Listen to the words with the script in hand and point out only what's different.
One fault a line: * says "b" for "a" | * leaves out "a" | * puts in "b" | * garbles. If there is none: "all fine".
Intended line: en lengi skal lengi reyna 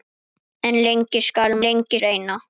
all fine